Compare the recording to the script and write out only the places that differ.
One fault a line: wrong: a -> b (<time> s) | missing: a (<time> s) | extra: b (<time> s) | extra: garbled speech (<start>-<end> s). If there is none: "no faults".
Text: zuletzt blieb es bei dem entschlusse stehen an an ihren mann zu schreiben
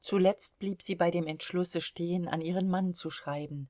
wrong: es -> sie (0.8 s)
missing: an (2.4 s)